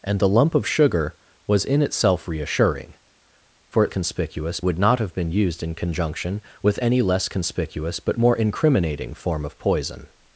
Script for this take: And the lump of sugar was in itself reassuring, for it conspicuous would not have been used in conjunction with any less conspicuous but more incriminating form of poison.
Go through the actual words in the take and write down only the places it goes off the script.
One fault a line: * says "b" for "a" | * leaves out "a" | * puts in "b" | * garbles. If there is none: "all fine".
all fine